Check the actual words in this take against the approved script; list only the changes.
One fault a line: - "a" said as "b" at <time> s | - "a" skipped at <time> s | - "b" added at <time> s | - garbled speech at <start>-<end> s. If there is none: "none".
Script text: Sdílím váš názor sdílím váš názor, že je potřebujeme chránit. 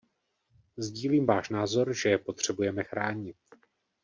- "sdílím váš názor" skipped at 1.9 s